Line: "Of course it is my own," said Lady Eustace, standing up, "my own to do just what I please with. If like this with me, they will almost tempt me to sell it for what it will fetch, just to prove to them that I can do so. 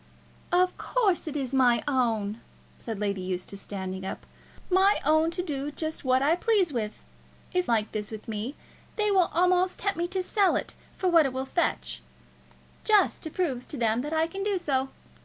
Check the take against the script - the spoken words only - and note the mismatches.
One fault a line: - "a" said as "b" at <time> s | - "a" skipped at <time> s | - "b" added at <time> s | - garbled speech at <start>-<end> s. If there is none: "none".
none